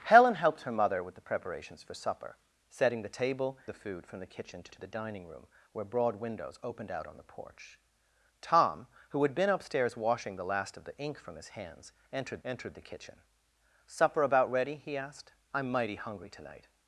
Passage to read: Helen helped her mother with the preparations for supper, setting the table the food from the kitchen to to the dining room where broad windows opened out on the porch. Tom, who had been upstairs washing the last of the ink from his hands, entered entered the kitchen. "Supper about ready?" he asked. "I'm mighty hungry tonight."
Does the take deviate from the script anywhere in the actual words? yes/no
no